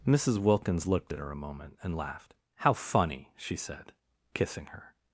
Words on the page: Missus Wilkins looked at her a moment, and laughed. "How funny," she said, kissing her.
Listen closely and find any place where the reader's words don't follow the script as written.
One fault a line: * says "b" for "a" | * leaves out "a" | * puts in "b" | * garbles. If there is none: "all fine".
all fine